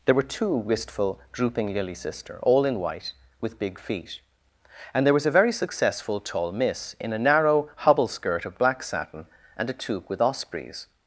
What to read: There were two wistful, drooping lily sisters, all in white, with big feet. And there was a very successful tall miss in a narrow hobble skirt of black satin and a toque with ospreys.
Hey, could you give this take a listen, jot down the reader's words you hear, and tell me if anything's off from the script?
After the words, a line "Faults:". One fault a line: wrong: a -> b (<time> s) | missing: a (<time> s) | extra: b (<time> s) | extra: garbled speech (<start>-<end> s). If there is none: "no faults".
There were two wistful, drooping lily sister, all in white, with big feet. And there was a very successful tall miss in a narrow hobble skirt of black satin and a toque with ospreys.
Faults:
wrong: sisters -> sister (1.9 s)